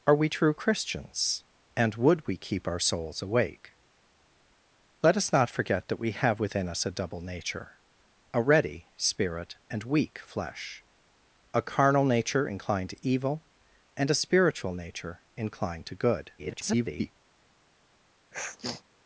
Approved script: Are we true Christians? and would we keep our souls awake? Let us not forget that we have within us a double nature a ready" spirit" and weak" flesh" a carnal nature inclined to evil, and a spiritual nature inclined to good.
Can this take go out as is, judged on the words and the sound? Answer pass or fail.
fail